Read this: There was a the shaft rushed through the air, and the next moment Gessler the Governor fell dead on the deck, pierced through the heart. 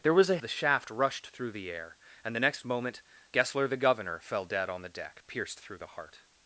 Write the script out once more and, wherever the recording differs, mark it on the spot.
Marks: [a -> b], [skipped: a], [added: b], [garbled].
There was a the shaft rushed through the air, and the next moment Gessler the Governor fell dead on the deck, pierced through the heart.